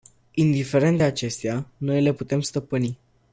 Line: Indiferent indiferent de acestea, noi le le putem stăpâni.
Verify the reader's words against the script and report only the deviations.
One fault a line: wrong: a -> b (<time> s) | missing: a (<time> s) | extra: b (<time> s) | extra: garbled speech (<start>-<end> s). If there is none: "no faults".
missing: indiferent (1.0 s)
missing: le (2.1 s)